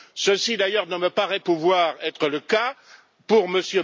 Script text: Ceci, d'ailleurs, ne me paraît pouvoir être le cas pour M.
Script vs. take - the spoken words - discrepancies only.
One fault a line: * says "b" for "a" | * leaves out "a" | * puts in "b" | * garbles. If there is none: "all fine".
all fine